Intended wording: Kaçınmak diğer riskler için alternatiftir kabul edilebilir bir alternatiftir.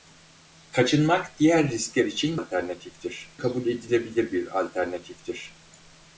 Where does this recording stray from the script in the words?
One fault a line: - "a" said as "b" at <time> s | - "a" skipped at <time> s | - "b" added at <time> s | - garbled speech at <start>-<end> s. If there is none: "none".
none